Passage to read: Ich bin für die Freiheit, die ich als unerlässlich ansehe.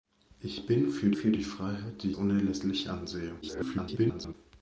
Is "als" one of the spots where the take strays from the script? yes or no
yes